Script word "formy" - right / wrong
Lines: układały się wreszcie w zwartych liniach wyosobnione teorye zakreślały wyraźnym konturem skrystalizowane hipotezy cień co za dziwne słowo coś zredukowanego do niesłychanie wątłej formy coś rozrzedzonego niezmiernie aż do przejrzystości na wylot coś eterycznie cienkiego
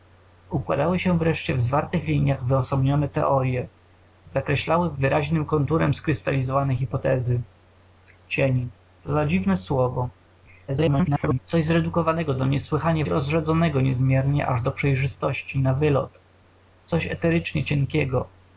wrong